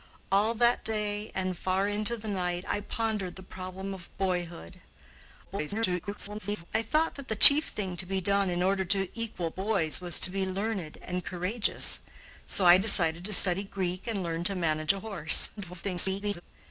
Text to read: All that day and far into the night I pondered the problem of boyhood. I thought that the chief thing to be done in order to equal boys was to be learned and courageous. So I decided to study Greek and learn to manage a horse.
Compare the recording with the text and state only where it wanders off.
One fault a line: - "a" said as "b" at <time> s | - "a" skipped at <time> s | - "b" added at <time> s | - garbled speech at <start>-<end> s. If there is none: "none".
- garbled speech at 5.4-6.6 s
- garbled speech at 15.6-16.4 s